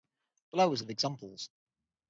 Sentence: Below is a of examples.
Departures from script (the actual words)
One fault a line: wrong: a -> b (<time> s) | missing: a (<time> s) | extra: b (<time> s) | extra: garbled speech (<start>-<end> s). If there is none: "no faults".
no faults